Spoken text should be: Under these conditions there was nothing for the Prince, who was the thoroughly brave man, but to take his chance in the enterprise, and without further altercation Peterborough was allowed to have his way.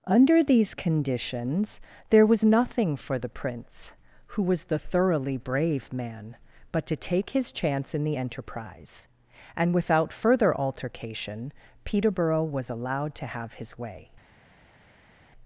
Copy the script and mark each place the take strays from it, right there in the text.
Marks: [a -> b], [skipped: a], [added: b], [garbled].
Under these conditions there was nothing for the Prince, who was the thoroughly brave man, but to take his chance in the enterprise, and without further altercation Peterborough was allowed to have his way.